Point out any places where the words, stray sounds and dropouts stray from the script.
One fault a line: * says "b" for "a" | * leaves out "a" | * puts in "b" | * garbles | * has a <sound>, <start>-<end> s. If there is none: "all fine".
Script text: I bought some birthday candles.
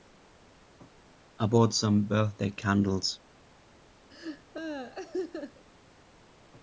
* has a laugh, 4.1-5.6 s